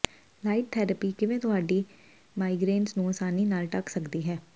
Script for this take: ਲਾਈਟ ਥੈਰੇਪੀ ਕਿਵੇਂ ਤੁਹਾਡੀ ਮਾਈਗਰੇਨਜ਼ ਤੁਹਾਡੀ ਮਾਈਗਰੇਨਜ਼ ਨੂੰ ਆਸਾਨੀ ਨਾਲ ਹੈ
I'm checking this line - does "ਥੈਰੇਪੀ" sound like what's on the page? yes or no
yes